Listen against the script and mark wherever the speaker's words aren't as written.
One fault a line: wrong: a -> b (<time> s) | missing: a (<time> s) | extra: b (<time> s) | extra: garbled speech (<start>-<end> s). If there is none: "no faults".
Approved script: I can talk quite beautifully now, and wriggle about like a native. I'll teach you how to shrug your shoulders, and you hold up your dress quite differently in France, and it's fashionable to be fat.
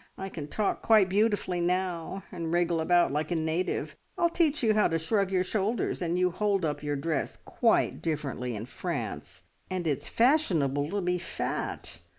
no faults